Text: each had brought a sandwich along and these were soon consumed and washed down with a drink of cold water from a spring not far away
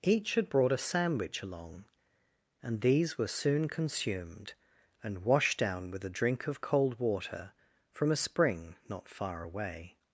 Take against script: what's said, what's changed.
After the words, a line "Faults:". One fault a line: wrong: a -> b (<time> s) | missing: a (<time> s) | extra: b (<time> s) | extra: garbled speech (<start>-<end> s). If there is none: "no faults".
each had brought a sandwich along and these were soon consumed and washed down with a drink of cold water from a spring not far away
Faults:
no faults